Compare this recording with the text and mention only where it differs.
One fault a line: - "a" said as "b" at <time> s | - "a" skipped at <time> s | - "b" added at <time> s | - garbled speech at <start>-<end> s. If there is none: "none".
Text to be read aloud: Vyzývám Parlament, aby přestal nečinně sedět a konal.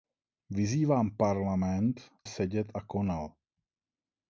- "aby přestal nečinně" skipped at 2.1 s